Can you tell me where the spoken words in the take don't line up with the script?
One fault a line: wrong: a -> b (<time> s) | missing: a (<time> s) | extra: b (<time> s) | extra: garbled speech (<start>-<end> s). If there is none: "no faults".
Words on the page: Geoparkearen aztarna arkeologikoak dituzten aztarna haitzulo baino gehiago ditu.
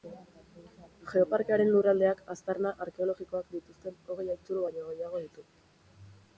extra: lurraldeak (1.8 s)
wrong: aztarna -> hogei (4.1 s)